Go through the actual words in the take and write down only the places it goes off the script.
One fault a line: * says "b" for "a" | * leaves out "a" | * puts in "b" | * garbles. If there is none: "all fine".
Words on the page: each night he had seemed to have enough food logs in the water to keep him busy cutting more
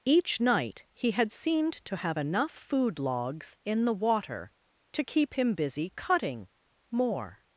all fine